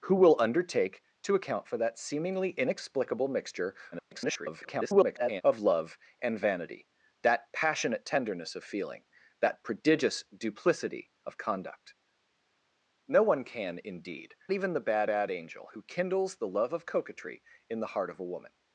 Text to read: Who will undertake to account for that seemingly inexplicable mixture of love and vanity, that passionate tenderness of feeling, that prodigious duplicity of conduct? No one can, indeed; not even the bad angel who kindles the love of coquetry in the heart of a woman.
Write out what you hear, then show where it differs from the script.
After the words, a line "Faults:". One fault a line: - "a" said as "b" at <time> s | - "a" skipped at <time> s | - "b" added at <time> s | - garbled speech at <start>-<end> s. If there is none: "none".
Who will undertake to account for that seemingly inexplicable mixture [garbled] of love and vanity, that passionate tenderness of feeling, that prodigious duplicity of conduct? No one can, indeed; even the bad bad angel who kindles the love of coquetry in the heart of a woman.
Faults:
- garbled speech at 3.9-5.4 s
- "not" skipped at 14.3 s
- "bad" added at 15.1 s